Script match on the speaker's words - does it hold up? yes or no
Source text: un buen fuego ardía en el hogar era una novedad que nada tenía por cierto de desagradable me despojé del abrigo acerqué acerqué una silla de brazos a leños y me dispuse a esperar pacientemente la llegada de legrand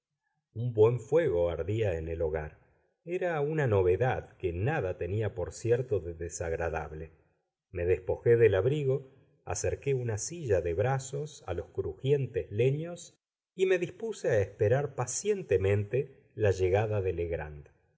no